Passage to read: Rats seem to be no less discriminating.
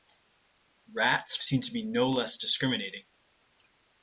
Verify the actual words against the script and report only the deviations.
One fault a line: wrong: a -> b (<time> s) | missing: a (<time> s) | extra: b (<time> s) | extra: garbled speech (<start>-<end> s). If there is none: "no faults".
no faults